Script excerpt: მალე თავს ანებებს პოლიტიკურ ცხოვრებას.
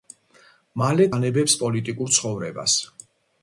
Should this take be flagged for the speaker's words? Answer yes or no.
yes